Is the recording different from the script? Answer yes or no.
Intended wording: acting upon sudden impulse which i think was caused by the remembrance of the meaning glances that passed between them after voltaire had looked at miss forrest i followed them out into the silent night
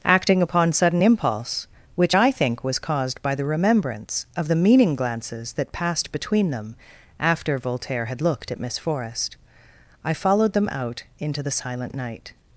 no